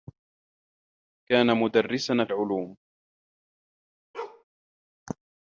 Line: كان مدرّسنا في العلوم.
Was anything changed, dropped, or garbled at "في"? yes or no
yes